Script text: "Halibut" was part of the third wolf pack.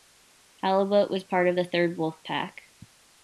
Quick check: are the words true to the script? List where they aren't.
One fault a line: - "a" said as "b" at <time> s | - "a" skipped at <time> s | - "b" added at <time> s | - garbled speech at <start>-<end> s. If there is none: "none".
none